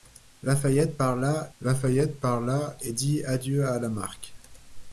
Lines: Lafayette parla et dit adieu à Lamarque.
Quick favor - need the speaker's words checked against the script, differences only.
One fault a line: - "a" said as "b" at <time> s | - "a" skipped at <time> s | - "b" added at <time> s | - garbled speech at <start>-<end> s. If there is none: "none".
- "lafayette parla" added at 1.6 s